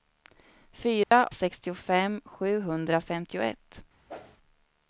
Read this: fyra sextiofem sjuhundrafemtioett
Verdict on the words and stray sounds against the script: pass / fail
fail